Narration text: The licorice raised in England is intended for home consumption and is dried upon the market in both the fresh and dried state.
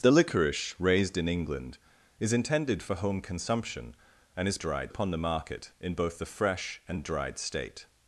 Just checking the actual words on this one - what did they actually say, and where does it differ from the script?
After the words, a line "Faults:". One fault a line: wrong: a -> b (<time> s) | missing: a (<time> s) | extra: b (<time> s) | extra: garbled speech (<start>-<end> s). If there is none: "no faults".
The licorice raised in England is intended for home consumption and is dried upon the market in both the fresh and dried state.
Faults:
no faults